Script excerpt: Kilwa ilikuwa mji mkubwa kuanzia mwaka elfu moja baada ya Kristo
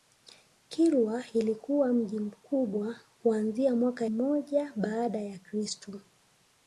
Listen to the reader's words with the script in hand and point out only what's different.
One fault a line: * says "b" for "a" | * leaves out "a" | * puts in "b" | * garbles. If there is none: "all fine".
* leaves out "elfu"